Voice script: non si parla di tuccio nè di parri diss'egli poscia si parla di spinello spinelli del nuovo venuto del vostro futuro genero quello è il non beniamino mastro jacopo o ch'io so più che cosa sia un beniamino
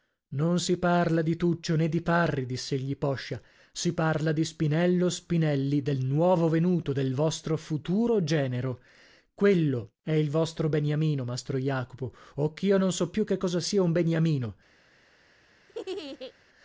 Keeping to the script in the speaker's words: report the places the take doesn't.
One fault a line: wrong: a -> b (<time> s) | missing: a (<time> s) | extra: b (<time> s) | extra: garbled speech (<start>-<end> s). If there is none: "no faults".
wrong: non -> vostro (10.3 s)
extra: non (12.8 s)